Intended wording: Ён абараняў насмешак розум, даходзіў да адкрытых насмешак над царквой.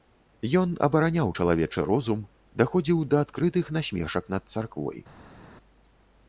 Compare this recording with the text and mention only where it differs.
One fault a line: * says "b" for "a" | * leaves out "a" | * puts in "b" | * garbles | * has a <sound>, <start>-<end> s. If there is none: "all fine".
* says "чалавечы" for "насмешак"